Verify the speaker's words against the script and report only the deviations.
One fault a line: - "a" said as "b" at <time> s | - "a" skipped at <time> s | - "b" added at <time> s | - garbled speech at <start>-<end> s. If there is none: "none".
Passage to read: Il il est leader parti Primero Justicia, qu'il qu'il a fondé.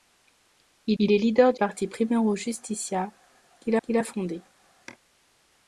none